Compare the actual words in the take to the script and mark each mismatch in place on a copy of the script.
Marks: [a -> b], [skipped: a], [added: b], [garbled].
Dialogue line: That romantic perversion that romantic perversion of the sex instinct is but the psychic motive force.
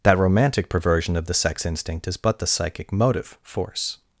That romantic perversion [skipped: that romantic perversion] of the sex instinct is but the psychic motive force.